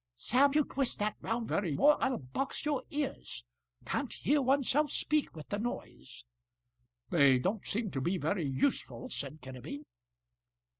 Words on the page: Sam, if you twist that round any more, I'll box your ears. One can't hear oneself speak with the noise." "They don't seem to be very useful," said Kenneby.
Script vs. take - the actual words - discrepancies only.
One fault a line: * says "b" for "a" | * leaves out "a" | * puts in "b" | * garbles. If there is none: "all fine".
* leaves out "if"
* says "very" for "any"
* leaves out "One"